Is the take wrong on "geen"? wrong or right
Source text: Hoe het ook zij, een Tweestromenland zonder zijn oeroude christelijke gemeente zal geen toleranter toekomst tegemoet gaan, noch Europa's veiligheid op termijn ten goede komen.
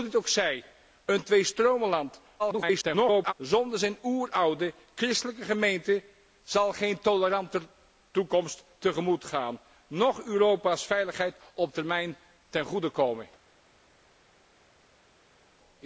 right